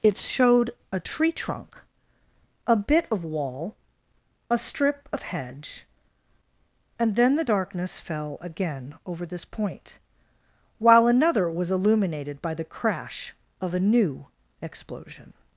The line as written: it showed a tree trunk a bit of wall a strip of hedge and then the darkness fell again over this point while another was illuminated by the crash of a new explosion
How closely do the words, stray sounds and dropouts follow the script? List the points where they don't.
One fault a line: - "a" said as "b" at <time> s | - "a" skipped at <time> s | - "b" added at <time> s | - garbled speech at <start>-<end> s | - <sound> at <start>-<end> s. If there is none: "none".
none